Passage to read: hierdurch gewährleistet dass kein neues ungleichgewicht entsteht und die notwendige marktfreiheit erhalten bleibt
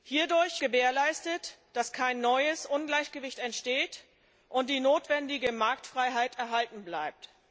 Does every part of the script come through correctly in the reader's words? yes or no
yes